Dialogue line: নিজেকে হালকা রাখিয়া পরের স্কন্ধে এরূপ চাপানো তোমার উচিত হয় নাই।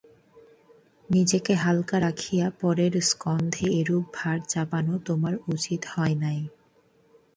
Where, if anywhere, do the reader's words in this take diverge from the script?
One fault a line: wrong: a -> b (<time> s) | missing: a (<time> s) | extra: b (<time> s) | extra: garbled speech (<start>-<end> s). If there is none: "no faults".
extra: ভার (4.2 s)